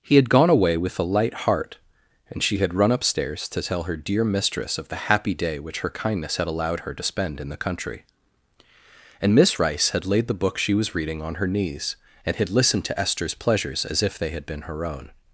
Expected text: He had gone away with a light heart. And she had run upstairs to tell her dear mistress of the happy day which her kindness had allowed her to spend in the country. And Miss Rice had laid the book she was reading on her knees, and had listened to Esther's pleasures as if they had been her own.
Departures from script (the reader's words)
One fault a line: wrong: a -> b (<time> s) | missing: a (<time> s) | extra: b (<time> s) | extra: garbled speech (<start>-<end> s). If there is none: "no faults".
no faults